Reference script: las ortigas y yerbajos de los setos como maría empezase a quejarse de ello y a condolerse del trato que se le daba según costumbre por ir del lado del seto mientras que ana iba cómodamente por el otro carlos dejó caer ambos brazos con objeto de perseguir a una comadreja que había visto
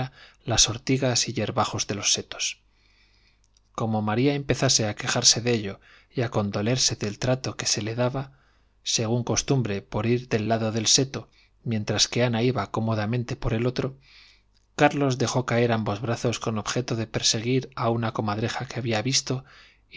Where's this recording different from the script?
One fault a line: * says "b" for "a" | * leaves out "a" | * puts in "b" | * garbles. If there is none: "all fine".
all fine